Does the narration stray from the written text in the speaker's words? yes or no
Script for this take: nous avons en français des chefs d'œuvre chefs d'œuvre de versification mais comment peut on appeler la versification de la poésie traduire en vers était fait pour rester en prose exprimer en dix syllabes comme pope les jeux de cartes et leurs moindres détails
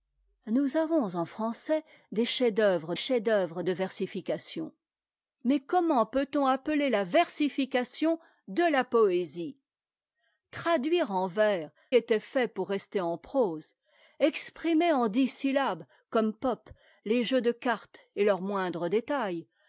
no